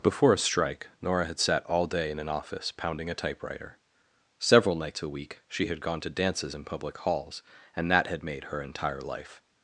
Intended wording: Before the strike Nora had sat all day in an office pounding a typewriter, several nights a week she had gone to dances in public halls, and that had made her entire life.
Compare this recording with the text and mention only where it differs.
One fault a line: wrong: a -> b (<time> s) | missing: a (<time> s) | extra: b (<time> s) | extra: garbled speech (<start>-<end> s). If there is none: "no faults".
wrong: the -> a (0.3 s)